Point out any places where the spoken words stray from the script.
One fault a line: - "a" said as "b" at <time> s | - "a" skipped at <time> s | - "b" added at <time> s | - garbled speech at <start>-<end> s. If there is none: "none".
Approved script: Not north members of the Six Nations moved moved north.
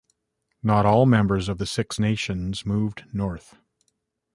- "north" said as "all" at 0.9 s
- "moved" skipped at 3.0 s